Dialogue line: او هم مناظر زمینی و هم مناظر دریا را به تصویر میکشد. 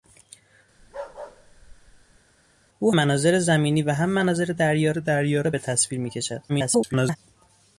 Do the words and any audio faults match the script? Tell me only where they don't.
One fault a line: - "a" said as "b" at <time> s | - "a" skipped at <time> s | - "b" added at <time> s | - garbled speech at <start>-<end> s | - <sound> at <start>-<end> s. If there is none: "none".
- bark at 0.8-2.2 s
- "هم" skipped at 2.9 s
- "دریا" added at 4.9 s
- garbled speech at 6.5-7.2 s